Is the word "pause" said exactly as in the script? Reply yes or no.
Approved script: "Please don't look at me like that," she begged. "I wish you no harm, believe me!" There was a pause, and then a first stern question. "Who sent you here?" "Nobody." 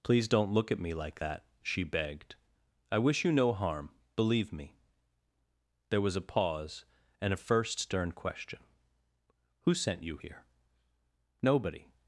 yes